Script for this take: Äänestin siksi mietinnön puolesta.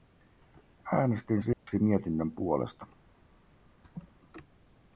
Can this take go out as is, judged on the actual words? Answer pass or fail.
pass